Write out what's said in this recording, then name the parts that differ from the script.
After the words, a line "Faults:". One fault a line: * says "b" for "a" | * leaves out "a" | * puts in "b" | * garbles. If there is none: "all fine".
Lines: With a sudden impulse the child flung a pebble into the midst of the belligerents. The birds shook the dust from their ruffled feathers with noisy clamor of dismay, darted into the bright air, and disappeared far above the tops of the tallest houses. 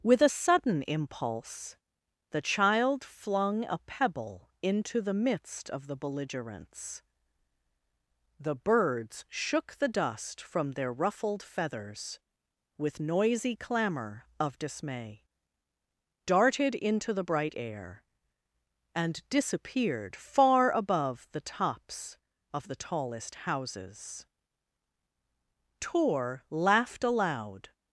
With a sudden impulse the child flung a pebble into the midst of the belligerents. The birds shook the dust from their ruffled feathers with noisy clamor of dismay, darted into the bright air, and disappeared far above the tops of the tallest houses. Tor laughed aloud
Faults:
* puts in "Tor laughed aloud"